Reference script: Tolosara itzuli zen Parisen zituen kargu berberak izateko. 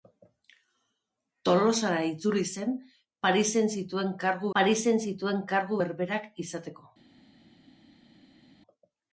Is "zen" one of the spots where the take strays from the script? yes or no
no